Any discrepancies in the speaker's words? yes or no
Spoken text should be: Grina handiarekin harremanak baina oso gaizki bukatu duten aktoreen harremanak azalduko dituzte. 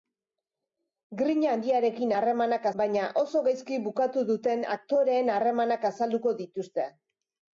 no